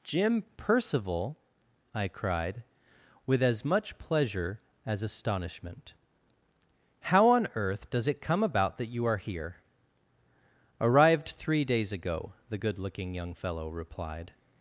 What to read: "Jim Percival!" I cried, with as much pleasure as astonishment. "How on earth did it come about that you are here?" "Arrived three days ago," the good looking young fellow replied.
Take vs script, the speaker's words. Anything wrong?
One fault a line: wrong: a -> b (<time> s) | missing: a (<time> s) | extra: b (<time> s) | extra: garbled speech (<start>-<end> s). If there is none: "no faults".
wrong: did -> does (7.9 s)